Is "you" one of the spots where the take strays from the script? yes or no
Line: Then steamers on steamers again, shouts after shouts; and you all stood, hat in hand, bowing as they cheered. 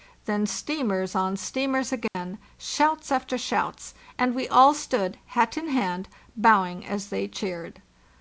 yes